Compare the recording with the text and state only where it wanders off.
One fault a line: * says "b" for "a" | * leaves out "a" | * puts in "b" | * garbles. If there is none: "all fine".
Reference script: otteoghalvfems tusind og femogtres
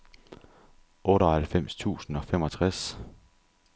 all fine